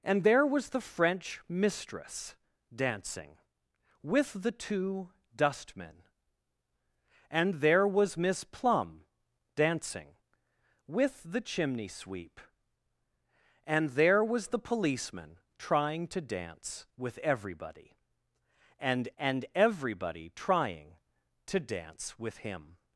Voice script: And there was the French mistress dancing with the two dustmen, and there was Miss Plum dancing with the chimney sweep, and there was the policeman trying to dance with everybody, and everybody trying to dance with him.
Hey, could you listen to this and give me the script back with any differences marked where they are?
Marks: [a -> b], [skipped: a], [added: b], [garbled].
And there was the French mistress dancing with the two dustmen, and there was Miss Plum dancing with the chimney sweep, and there was the policeman trying to dance with everybody, and [added: and] everybody trying to dance with him.